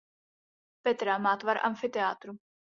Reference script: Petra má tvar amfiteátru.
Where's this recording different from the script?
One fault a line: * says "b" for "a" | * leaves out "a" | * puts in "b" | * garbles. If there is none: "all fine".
all fine